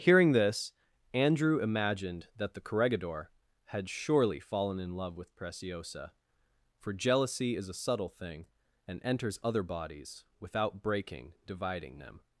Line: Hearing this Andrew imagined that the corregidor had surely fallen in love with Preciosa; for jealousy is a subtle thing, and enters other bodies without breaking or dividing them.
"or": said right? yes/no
no